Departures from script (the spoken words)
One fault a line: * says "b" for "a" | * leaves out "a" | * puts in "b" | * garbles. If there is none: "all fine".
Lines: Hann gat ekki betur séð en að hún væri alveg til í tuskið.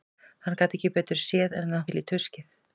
* leaves out "hún væri alveg"